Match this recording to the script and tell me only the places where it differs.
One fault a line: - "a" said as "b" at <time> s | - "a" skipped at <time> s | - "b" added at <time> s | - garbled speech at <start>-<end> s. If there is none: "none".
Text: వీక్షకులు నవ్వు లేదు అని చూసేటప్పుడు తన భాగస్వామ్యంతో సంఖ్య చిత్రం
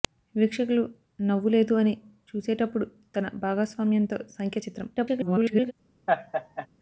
- garbled speech at 5.0-5.7 s